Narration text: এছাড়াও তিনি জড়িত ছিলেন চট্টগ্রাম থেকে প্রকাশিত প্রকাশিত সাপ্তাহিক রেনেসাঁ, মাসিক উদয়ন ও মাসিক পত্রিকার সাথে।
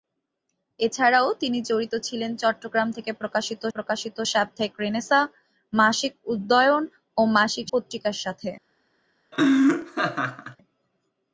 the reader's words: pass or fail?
pass